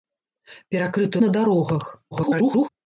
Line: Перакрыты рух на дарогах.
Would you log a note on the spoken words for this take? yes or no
yes